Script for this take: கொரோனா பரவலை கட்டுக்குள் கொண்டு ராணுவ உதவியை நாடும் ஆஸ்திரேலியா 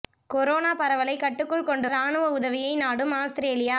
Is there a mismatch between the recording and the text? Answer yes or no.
no